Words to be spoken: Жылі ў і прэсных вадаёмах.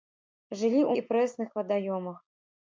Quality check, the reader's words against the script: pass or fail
pass